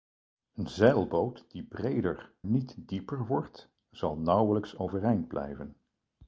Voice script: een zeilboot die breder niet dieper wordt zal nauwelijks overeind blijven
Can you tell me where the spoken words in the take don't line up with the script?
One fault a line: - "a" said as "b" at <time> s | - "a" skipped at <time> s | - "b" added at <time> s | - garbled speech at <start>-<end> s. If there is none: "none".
none